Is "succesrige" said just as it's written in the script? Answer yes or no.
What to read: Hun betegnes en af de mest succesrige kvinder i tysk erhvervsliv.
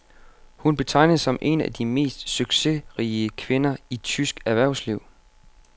yes